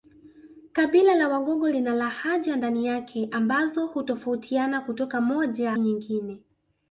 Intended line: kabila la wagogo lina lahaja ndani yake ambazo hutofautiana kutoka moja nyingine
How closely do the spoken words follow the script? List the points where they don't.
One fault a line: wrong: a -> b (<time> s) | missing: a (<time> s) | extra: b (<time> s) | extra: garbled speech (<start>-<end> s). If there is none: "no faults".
no faults